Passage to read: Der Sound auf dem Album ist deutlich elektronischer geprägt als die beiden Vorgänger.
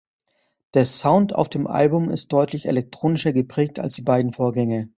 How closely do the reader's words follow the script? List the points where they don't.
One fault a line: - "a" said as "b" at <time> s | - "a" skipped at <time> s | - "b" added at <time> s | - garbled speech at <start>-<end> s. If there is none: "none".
none